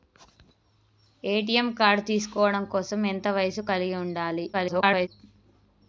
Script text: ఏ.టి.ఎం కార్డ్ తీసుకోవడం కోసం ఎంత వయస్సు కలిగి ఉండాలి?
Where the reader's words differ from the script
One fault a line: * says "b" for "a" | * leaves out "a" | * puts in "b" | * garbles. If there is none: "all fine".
* garbles